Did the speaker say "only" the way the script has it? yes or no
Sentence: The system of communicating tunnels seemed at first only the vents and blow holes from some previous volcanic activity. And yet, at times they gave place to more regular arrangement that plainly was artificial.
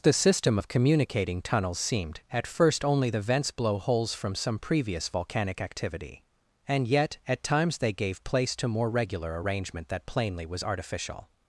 yes